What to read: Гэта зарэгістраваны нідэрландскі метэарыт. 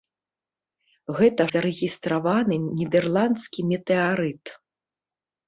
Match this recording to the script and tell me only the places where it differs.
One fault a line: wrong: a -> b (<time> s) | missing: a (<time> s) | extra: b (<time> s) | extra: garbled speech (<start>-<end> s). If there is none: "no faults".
no faults